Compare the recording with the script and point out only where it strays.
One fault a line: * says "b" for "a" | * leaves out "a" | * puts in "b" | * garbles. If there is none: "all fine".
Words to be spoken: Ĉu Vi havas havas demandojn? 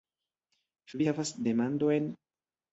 * leaves out "havas"